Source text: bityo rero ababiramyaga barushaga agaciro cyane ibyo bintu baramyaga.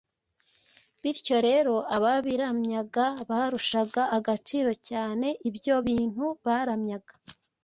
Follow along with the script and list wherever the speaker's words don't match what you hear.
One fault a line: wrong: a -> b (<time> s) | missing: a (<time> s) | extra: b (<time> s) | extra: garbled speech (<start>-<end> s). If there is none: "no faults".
no faults